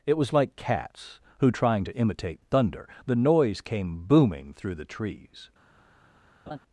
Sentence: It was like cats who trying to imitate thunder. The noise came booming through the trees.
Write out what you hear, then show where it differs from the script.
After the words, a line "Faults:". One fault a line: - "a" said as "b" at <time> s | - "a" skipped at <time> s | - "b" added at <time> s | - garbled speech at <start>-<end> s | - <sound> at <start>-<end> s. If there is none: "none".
It was like cats who trying to imitate thunder. The noise came booming through the trees.
Faults:
- laugh at 6.5-6.6 s